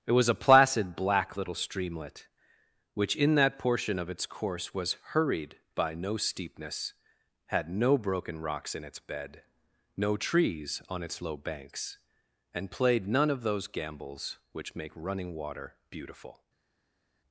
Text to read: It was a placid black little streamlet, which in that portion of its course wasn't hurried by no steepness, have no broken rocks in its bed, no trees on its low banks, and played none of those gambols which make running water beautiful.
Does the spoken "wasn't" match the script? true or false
false